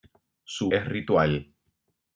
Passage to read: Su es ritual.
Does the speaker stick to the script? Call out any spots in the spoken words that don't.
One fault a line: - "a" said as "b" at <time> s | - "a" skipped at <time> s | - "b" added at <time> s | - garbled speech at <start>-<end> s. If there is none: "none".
none